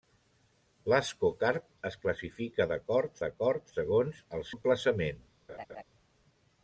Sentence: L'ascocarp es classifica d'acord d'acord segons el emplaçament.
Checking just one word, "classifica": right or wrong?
right